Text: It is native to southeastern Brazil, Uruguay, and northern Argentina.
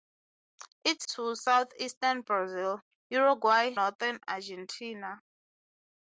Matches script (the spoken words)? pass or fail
fail